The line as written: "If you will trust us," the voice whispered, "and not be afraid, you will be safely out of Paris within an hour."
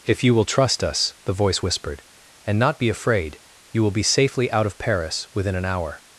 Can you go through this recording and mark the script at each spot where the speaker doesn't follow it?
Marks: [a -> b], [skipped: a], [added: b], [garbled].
"If you will trust us," the voice whispered, "and not be afraid, you will be safely out of Paris within an hour."